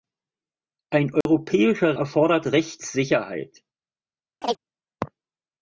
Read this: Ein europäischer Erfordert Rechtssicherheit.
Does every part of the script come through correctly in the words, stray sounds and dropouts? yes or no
no